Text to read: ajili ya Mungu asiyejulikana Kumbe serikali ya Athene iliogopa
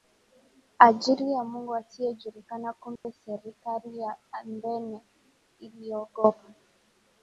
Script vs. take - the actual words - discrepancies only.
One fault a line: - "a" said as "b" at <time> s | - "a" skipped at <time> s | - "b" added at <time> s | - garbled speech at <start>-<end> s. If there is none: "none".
none